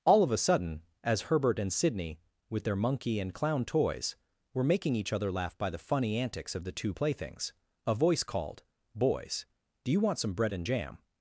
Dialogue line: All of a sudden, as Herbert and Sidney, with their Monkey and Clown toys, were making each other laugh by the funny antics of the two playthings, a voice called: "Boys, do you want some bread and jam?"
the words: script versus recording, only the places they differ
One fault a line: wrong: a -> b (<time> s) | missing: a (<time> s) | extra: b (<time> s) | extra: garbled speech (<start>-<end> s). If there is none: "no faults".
no faults